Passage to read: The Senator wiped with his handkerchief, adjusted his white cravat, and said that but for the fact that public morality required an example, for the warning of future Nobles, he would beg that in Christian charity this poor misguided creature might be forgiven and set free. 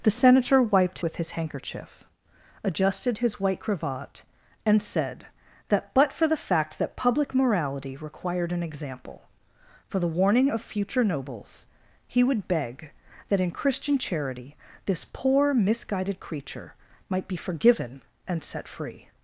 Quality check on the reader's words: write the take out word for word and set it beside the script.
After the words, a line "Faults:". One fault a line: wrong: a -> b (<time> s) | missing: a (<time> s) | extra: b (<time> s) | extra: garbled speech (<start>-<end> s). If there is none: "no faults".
The Senator wiped with his handkerchief, adjusted his white cravat, and said that but for the fact that public morality required an example, for the warning of future Nobles, he would beg that in Christian charity this poor misguided creature might be forgiven and set free.
Faults:
no faults